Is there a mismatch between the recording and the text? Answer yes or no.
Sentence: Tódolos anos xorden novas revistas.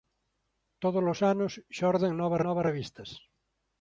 yes